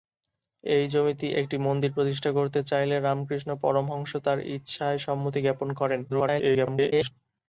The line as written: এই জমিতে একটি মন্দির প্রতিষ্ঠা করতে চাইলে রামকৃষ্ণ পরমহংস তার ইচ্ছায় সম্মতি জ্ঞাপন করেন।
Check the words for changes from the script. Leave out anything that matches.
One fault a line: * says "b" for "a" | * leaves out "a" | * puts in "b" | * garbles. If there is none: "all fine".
* garbles